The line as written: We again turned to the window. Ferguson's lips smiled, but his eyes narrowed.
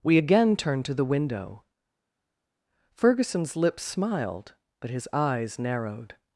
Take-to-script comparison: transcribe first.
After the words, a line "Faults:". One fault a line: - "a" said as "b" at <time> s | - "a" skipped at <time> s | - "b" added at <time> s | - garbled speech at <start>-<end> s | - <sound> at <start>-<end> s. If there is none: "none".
We again turned to the window. Ferguson's lips smiled, but his eyes narrowed.
Faults:
none